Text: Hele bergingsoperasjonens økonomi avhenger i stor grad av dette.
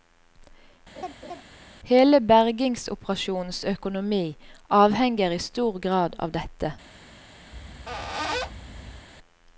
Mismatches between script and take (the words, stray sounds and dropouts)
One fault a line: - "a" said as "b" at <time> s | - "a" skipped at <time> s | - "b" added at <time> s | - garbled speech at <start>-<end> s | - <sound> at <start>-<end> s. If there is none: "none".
- laugh at 0.9-1.4 s
- squeak at 7.5-9.1 s